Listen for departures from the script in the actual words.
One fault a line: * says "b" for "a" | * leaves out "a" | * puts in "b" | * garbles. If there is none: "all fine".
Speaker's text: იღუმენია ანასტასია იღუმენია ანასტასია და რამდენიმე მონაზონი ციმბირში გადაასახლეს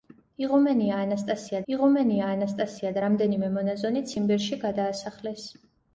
all fine